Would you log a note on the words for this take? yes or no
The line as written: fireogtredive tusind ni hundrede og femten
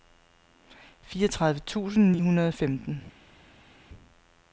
no